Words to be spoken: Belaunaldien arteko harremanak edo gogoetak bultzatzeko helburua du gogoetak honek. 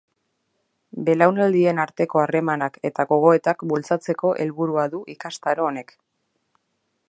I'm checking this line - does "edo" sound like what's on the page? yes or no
no